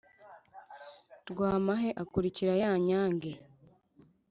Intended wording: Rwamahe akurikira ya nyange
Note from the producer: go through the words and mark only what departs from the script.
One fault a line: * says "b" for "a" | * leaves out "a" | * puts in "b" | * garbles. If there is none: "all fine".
all fine